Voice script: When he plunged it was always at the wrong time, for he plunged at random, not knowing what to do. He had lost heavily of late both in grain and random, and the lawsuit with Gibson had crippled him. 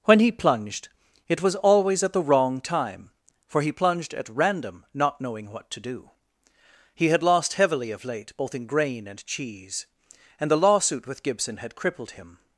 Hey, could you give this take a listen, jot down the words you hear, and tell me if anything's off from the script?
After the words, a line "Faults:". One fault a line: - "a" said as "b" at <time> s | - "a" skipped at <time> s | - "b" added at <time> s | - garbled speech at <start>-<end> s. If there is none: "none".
When he plunged it was always at the wrong time, for he plunged at random, not knowing what to do. He had lost heavily of late both in grain and cheese, and the lawsuit with Gibson had crippled him.
Faults:
- "random" said as "cheese" at 9.3 s